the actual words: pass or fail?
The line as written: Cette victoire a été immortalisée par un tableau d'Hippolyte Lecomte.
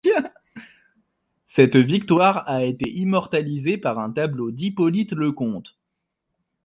pass